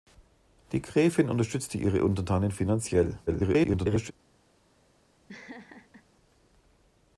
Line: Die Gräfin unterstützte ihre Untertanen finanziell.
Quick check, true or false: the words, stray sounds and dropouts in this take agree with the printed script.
false